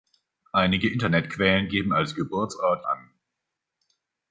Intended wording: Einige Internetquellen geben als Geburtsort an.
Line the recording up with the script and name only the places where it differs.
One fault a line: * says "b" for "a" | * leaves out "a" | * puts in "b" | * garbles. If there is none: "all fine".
all fine